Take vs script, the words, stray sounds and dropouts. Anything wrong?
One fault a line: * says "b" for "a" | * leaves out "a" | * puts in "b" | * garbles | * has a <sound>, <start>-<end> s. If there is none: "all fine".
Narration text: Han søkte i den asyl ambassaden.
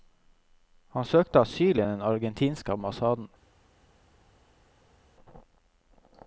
* puts in "asyl"
* says "argentinske" for "asyl"